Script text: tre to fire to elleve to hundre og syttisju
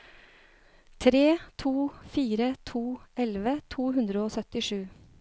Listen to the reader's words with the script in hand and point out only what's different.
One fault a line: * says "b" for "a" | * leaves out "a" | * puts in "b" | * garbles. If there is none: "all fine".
all fine